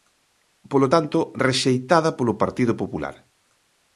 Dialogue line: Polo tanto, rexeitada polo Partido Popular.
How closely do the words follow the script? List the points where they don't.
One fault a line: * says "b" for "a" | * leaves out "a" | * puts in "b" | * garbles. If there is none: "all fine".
all fine